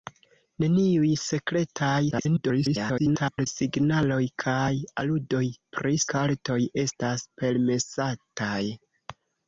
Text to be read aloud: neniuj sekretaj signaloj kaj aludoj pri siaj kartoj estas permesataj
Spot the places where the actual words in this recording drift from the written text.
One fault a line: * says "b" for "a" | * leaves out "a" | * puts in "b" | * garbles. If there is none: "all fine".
* garbles
* leaves out "siaj"